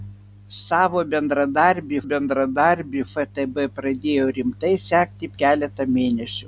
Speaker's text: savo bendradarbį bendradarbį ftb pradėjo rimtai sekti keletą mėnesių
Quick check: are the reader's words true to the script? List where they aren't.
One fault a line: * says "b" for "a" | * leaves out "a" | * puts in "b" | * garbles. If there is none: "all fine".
all fine